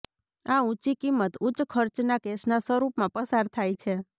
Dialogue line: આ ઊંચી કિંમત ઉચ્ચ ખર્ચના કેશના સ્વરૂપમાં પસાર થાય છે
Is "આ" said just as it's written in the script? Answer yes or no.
yes